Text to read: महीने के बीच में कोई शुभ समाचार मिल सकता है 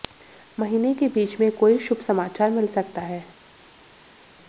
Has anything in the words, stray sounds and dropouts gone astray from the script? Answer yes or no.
no